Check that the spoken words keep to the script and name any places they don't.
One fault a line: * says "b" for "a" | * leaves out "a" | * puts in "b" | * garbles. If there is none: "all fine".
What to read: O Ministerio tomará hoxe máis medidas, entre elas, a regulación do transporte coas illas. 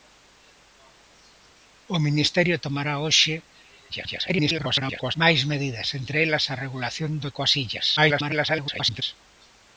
* garbles
* leaves out "transporte"
* garbles